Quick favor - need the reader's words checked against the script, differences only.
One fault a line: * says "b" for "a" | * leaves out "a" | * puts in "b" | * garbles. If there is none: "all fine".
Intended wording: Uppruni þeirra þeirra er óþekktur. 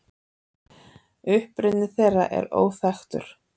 * leaves out "þeirra"